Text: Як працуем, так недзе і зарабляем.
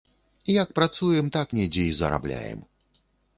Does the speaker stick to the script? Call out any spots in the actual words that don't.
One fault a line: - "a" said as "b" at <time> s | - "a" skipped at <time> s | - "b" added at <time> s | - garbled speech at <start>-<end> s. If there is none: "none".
none